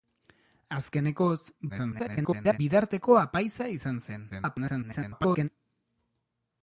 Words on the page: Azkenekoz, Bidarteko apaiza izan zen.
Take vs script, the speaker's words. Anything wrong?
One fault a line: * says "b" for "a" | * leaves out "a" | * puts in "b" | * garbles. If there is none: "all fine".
* garbles
* garbles